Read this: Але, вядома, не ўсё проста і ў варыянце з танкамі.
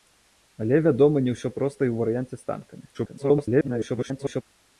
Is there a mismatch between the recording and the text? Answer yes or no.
yes